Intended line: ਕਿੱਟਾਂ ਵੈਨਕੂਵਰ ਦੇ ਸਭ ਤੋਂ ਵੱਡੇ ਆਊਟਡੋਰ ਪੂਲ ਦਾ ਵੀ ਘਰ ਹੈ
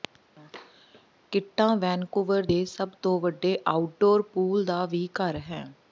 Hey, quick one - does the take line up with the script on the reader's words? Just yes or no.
yes